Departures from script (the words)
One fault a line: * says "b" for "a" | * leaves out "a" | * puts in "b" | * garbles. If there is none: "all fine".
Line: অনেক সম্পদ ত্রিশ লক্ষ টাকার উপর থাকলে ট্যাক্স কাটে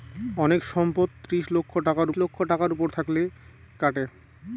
* puts in "লক্ষ টাকার"
* leaves out "ট্যাক্স"